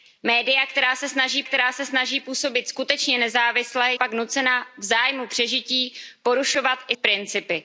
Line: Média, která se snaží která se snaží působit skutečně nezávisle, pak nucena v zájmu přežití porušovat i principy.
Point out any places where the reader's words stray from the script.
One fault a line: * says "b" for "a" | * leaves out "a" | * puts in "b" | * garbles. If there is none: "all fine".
all fine